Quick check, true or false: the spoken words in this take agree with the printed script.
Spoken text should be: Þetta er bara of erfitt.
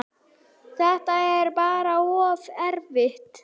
true